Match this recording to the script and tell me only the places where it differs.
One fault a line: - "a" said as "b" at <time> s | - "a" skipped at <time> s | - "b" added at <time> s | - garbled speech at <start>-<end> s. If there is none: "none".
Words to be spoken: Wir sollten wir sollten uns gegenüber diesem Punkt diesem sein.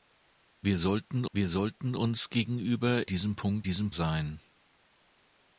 none